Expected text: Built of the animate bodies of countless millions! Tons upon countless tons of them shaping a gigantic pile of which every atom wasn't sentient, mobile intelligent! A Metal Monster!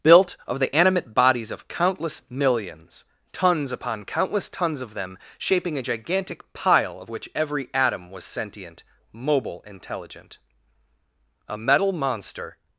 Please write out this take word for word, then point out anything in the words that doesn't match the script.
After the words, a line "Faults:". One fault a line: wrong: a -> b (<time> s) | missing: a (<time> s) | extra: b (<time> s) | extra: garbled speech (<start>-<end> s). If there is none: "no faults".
Built of the animate bodies of countless millions! Tons upon countless tons of them shaping a gigantic pile of which every atom was sentient, mobile intelligent! A Metal Monster!
Faults:
wrong: wasn't -> was (8.1 s)